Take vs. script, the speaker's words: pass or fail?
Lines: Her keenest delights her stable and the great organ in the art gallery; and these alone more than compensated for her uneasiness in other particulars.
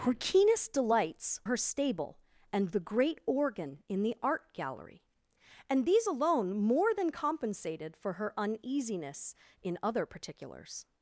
pass